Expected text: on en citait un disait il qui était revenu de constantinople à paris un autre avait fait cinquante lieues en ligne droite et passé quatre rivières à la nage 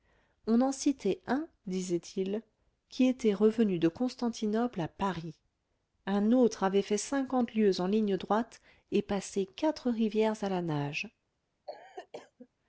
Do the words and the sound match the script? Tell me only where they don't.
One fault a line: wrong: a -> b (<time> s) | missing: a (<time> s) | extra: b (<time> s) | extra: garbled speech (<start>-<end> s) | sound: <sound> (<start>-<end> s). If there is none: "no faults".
sound: cough (11.7-12.5 s)